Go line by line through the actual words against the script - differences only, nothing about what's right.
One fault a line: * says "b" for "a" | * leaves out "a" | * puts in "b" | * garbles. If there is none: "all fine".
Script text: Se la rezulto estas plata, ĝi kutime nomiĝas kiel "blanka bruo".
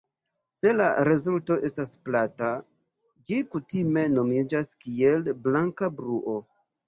all fine